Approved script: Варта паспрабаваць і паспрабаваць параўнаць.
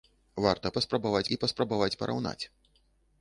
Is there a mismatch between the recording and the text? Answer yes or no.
no